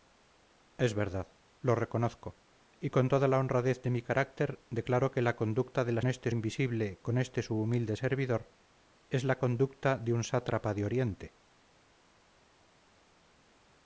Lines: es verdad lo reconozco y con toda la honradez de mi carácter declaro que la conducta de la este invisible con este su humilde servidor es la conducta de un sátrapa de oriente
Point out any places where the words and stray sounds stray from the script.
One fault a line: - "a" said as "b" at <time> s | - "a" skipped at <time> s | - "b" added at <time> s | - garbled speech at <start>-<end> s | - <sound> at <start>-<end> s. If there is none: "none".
none